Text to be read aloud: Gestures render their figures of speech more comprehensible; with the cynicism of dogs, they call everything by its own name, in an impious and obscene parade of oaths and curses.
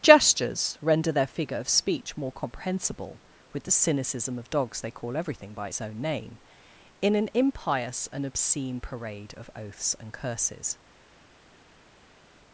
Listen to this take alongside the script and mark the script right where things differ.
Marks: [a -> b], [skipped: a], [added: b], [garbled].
Gestures render their [figures -> figure] of speech more comprehensible; with the cynicism of dogs, they call everything by its own name, in an impious and obscene parade of oaths and curses.